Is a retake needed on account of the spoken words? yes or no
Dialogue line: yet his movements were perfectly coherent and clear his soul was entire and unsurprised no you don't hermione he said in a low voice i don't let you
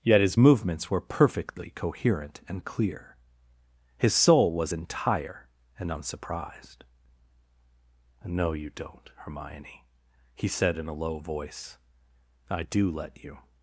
yes